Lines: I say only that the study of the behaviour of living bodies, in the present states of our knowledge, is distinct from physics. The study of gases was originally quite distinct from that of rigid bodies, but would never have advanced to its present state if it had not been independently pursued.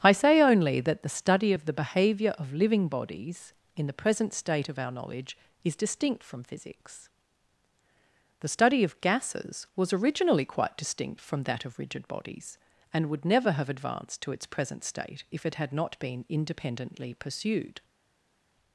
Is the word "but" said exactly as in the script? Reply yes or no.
no